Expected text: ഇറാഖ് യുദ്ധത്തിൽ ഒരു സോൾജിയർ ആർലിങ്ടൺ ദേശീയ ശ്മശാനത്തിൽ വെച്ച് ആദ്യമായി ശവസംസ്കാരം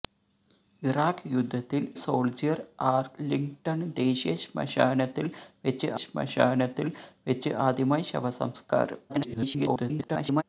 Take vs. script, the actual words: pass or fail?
fail